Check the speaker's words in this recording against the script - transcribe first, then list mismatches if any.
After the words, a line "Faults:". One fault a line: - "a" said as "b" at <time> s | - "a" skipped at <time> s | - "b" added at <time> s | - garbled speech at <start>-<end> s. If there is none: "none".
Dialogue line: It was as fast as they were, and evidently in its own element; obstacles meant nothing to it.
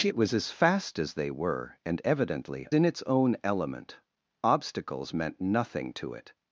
It was as fast as they were, and evidently in its own element; obstacles meant nothing to it.
Faults:
none